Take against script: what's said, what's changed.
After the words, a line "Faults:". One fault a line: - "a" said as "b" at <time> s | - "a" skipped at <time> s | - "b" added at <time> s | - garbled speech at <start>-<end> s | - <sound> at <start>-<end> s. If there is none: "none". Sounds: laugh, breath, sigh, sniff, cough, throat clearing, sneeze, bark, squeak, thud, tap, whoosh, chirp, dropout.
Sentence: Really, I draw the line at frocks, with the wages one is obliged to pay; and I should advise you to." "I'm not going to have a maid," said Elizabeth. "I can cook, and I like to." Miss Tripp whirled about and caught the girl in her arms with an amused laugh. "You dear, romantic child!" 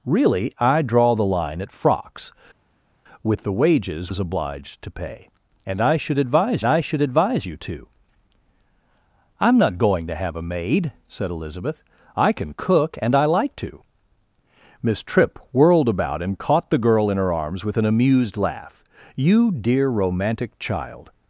Really, I draw the line at frocks, with the wages is obliged to pay; and I should advise I should advise you to." "I'm not going to have a maid," said Elizabeth. "I can cook, and I like to." Miss Tripp whirled about and caught the girl in her arms with an amused laugh. "You dear, romantic child!"
Faults:
- "one" skipped at 4.1 s
- "I should advise" added at 6.6 s